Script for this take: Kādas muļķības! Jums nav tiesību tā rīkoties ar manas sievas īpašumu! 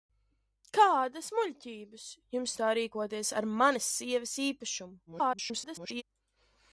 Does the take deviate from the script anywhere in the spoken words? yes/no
yes